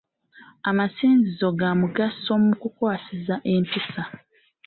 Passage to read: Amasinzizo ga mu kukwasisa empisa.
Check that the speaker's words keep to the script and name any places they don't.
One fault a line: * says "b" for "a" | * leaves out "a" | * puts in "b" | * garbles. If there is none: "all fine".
* puts in "mugaso"